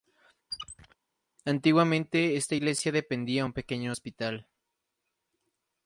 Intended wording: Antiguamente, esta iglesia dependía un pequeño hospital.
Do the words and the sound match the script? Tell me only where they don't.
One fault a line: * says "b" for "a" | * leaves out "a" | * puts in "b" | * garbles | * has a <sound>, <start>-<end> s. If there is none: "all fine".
* has a squeak, 0.5-1.0 s